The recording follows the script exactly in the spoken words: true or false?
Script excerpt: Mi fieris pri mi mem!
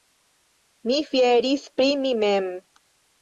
true